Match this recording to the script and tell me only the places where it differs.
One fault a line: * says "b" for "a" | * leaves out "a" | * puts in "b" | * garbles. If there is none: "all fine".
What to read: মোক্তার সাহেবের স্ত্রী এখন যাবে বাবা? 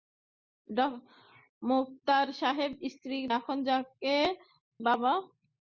all fine